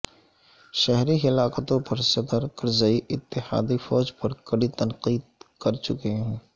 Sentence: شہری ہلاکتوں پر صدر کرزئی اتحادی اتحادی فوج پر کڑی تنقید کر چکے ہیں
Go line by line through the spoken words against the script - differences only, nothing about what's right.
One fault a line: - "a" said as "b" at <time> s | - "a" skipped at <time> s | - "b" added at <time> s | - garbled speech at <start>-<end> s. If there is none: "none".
- "اتحادی" skipped at 3.8 s